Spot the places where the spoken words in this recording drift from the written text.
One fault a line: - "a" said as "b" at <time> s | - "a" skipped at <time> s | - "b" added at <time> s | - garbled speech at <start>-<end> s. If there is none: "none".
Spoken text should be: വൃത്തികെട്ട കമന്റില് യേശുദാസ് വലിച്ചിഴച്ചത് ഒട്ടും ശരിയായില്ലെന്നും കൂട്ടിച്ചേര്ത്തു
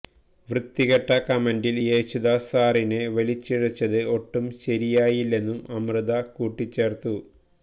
- "സാറിനെ" added at 2.5 s
- "അമൃത" added at 5.8 s